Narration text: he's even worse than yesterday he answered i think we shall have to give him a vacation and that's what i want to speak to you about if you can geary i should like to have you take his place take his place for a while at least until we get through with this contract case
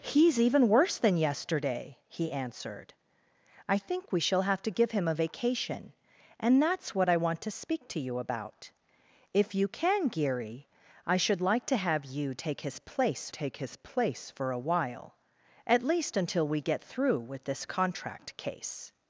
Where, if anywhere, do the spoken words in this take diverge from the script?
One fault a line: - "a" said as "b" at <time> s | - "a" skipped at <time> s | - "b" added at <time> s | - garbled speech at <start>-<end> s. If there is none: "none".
none